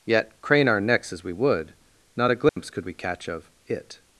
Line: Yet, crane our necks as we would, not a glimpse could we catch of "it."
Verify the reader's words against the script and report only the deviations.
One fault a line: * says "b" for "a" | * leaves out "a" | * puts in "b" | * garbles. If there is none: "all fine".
all fine